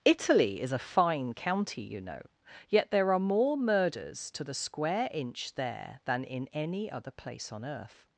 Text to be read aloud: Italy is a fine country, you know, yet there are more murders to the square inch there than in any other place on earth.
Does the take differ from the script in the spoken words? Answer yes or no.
yes